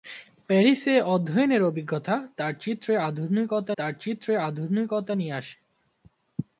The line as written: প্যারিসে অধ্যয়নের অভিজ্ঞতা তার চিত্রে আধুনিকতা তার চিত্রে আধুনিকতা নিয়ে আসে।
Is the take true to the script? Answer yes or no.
yes